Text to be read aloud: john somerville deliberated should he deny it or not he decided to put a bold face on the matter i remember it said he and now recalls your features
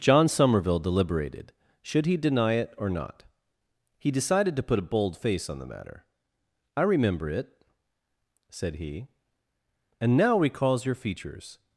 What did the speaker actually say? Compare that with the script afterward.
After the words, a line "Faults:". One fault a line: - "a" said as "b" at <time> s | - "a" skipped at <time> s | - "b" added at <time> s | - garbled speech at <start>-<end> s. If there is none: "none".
john somerville deliberated should he deny it or not he decided to put a bold face on the matter i remember it said he and now recalls your features
Faults:
none